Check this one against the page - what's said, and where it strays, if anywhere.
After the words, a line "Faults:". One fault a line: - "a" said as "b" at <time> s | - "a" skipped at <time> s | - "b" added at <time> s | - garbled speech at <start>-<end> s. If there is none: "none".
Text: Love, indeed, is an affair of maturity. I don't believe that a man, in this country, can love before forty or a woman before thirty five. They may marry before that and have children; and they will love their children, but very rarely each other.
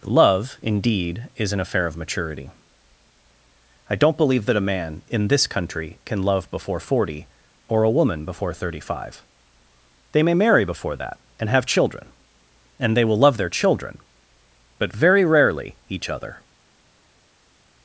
Love, indeed, is an affair of maturity. I don't believe that a man, in this country, can love before forty or a woman before thirty five. They may marry before that and have children; and they will love their children, but very rarely each other.
Faults:
none